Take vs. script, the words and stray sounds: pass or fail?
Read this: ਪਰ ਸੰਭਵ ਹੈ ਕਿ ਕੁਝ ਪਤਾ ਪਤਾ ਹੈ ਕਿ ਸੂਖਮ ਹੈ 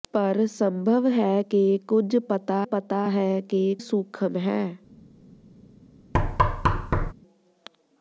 fail